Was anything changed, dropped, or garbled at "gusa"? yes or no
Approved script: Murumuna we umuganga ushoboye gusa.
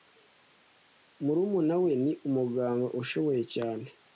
yes